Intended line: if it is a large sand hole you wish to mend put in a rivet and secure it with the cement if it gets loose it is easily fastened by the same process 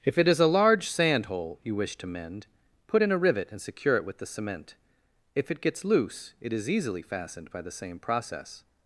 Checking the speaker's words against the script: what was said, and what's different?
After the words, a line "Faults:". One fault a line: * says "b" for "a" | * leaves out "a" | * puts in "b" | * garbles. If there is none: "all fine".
if it is a large sand hole you wish to mend put in a rivet and secure it with the cement if it gets loose it is easily fastened by the same process
Faults:
all fine